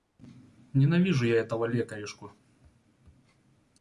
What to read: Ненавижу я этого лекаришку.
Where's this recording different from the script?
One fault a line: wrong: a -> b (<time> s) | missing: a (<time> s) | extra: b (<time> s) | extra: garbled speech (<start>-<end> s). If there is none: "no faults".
no faults